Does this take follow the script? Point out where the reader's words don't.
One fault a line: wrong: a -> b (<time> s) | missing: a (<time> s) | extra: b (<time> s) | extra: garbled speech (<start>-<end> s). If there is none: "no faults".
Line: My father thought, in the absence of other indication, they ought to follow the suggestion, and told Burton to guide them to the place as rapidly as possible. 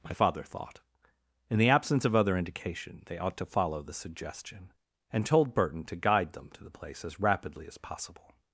no faults